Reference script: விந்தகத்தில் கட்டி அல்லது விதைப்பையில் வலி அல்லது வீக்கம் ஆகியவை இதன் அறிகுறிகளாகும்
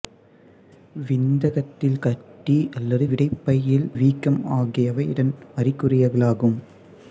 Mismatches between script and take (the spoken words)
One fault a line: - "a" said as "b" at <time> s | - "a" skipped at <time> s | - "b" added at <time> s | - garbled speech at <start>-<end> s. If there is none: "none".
- "வலி அல்லது" skipped at 3.9 s